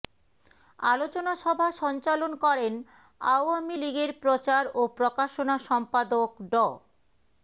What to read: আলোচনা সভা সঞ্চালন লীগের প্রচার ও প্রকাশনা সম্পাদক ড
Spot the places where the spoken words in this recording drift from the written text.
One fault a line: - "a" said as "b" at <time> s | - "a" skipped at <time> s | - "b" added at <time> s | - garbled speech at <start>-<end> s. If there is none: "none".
- "করেন আওয়ামী" added at 2.5 s